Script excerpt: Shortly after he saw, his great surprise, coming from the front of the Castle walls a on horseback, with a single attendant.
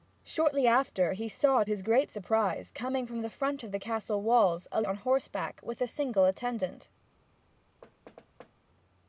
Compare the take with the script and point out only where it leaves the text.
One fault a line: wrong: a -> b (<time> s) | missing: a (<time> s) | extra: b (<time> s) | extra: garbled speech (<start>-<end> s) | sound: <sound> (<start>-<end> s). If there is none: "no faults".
sound: thud (7.8-8.5 s)